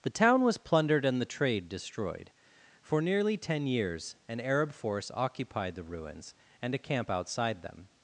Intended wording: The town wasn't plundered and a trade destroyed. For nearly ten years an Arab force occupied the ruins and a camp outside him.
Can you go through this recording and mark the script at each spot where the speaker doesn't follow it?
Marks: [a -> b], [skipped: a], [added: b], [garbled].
The town [wasn't -> was] plundered and [a -> the] trade destroyed. For nearly ten years an Arab force occupied the ruins and a camp outside [him. -> them]